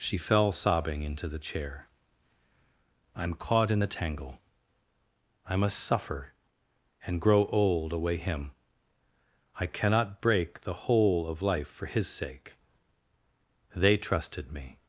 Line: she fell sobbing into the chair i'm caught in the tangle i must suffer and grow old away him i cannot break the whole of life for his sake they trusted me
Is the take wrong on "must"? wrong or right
right